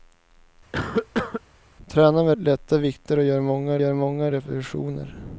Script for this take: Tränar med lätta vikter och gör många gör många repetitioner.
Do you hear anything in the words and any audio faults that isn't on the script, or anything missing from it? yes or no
yes